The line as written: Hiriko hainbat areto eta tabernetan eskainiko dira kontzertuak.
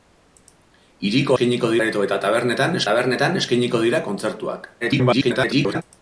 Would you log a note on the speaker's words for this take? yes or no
yes